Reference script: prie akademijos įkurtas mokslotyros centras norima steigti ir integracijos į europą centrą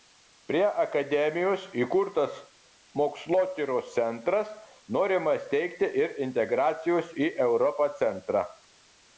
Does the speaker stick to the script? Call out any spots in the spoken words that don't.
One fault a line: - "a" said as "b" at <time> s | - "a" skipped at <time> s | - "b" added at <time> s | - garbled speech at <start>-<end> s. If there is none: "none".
none